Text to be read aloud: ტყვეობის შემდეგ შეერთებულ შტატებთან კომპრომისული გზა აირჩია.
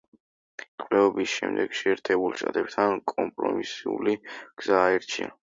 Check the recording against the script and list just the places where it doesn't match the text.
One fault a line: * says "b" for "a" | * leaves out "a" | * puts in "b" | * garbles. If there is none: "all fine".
all fine